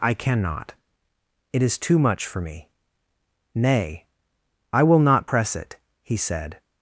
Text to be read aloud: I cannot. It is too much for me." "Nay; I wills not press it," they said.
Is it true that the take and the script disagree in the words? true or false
true